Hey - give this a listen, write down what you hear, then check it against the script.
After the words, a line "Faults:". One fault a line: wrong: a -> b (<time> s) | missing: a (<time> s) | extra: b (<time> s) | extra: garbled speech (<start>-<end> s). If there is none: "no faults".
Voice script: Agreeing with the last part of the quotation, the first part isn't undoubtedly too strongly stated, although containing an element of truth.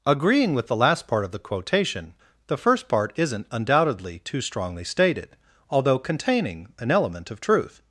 Agreeing with the last part of the quotation, the first part isn't undoubtedly too strongly stated, although containing an element of truth.
Faults:
no faults